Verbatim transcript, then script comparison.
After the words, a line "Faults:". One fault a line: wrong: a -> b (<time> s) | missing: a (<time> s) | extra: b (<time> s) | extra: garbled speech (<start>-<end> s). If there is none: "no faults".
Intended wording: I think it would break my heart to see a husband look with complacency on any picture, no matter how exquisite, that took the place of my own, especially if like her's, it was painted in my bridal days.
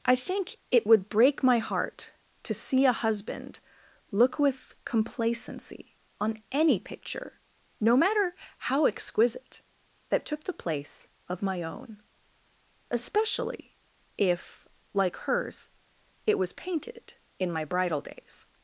I think it would break my heart to see a husband look with complacency on any picture, no matter how exquisite, that took the place of my own, especially if like her's, it was painted in my bridal days.
Faults:
no faults